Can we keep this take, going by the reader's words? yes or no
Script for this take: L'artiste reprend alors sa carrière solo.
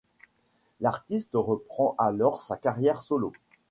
yes